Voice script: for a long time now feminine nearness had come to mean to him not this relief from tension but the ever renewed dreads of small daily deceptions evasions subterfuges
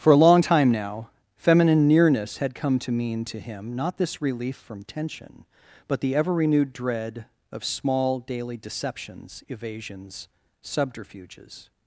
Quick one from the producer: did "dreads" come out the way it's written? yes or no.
no